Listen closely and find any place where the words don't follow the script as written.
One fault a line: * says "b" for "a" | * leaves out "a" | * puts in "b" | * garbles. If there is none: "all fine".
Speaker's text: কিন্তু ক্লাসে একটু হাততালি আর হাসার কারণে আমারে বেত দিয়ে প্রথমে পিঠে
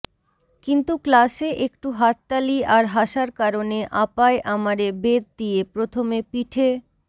* puts in "আপায়"